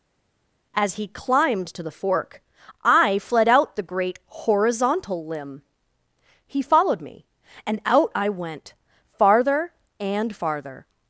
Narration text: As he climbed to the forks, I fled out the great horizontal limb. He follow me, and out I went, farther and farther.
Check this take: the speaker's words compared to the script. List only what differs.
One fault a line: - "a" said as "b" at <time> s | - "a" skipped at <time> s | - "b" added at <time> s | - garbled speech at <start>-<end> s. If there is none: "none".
- "forks" said as "fork" at 1.9 s
- "follow" said as "followed" at 6.6 s